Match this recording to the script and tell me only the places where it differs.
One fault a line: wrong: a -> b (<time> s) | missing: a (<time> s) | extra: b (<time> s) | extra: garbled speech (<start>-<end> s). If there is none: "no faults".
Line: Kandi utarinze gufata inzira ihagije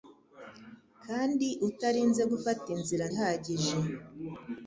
no faults